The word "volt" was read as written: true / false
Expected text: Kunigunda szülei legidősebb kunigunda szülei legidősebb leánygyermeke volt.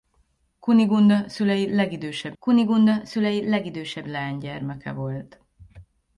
true